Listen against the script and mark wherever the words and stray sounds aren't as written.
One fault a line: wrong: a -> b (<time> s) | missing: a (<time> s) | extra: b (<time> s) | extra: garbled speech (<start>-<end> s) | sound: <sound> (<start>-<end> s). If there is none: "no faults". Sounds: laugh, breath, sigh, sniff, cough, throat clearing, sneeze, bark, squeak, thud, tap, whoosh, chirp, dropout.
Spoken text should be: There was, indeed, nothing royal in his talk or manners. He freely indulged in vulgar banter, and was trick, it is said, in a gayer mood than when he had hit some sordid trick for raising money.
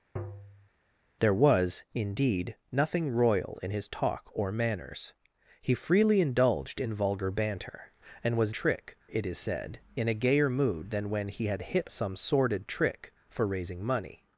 sound: tap (0.2-0.7 s)